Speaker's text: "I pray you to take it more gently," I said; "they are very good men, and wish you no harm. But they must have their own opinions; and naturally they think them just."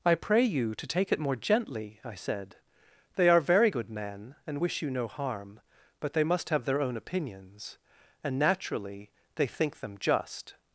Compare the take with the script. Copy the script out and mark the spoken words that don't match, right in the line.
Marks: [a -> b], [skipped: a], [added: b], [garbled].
"I pray you to take it more gently," I said; "they are very good men, and wish you no harm. But they must have their own opinions; and naturally they think them just."